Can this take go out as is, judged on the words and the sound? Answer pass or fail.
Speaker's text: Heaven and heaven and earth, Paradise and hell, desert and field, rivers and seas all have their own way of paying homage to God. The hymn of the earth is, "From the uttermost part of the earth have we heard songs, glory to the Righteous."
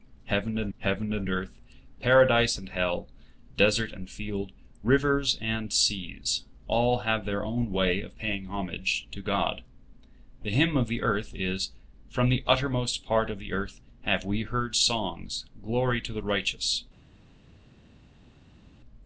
pass